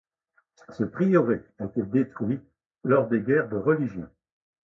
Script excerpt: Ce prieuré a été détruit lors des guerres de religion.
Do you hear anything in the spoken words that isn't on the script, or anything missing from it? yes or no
no